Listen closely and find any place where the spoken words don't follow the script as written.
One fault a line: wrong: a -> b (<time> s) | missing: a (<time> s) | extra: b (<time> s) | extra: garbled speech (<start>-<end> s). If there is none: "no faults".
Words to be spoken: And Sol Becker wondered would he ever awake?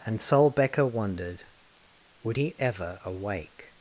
no faults